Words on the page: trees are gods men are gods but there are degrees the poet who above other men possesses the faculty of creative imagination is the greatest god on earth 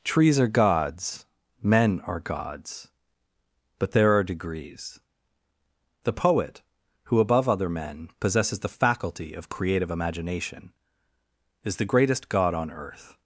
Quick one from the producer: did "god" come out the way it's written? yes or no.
yes